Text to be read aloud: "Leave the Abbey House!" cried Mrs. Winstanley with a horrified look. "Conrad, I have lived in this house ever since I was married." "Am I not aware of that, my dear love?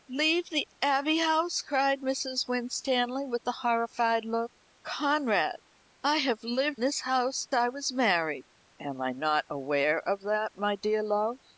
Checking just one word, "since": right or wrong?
wrong